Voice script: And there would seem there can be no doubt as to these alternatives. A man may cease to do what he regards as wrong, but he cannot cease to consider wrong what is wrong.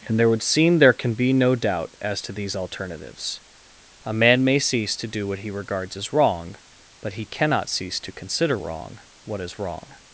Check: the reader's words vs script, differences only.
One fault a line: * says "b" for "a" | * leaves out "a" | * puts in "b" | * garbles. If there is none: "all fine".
all fine